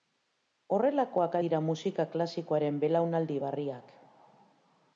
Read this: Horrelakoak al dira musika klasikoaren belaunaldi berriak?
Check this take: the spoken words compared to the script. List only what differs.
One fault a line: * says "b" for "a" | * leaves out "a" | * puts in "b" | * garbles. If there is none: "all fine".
* leaves out "al"